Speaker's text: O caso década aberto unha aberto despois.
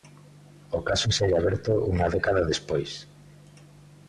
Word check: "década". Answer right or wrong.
wrong